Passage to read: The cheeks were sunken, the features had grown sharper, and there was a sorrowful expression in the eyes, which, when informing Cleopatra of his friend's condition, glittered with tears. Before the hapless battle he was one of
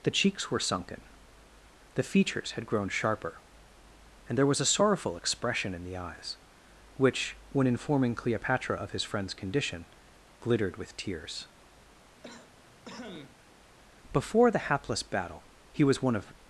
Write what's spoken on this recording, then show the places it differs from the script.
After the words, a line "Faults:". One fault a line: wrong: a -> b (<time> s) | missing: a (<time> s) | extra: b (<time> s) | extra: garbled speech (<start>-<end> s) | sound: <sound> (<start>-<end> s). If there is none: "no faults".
The cheeks were sunken, the features had grown sharper, and there was a sorrowful expression in the eyes, which, when informing Cleopatra of his friend's condition, glittered with tears. Before the hapless battle he was one of
Faults:
sound: cough (12.2-13.4 s)